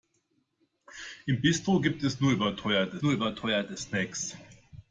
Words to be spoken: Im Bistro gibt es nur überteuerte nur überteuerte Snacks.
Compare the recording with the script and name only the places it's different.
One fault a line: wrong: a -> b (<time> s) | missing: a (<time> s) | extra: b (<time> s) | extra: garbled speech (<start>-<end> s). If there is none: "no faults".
no faults